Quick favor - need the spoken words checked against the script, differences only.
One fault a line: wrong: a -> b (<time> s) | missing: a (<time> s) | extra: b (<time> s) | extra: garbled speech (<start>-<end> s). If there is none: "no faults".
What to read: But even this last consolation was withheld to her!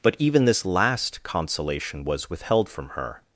wrong: to -> from (2.7 s)